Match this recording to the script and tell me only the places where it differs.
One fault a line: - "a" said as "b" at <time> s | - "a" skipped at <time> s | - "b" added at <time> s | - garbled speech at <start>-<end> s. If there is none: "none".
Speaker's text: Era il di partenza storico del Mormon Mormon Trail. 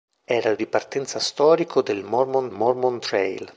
none